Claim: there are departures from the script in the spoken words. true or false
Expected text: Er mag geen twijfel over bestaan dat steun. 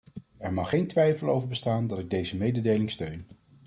true